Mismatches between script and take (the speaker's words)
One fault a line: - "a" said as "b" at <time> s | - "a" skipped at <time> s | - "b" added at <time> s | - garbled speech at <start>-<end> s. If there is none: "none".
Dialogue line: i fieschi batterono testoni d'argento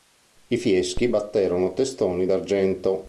none